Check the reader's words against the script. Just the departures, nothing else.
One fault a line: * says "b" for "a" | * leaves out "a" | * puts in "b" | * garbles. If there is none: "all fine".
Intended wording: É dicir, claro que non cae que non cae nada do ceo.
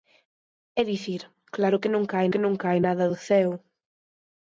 all fine